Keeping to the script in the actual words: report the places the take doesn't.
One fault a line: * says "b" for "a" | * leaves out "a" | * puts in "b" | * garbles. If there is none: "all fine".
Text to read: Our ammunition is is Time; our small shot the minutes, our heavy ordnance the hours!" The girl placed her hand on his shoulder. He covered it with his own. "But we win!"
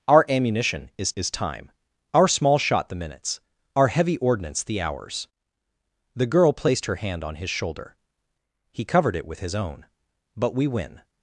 all fine